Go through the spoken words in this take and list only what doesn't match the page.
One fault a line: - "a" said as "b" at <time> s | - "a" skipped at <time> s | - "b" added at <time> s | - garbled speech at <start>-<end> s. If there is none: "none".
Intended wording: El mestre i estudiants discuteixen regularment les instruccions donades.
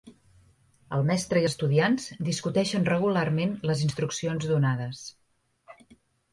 none